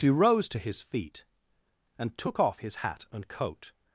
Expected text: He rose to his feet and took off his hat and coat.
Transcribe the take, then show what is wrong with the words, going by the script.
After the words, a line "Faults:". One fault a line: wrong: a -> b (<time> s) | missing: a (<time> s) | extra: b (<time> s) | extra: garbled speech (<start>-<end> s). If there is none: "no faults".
He rose to his feet and took off his hat and coat.
Faults:
no faults